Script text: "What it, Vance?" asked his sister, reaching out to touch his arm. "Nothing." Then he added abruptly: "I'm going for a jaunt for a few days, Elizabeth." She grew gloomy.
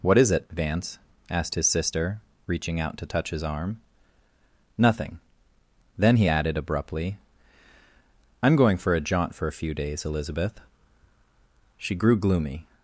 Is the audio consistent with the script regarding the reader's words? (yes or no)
no